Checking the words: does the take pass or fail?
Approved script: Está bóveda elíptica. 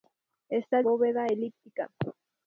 pass